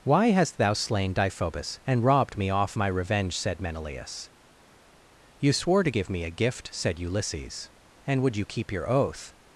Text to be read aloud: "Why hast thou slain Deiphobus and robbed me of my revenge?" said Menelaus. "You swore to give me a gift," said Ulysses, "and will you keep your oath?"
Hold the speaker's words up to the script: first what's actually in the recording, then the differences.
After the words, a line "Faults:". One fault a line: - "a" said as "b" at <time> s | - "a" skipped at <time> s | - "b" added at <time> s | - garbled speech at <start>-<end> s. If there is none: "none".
"Why hast thou slain Deiphobus and robbed me off my revenge?" said Menelaus. "You swore to give me a gift," said Ulysses, "and would you keep your oath?"
Faults:
- "of" said as "off" at 2.5 s
- "will" said as "would" at 8.2 s